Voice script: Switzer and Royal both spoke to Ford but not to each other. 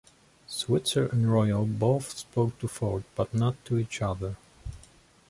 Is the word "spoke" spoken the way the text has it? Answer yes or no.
yes